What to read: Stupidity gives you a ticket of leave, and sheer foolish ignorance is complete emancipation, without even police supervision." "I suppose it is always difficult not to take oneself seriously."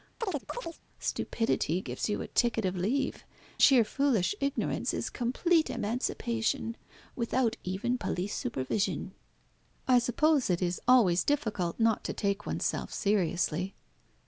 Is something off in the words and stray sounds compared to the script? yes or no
yes